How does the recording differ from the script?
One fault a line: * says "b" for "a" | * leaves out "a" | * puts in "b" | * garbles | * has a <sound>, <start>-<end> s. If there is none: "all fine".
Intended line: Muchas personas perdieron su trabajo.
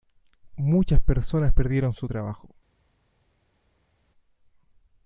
all fine